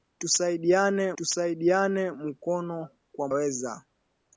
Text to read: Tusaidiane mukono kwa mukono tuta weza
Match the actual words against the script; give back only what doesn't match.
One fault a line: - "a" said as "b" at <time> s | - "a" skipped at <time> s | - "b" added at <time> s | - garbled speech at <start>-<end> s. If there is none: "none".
- "tusaidiane" added at 1.2 s
- "mukono tuta" skipped at 3.3 s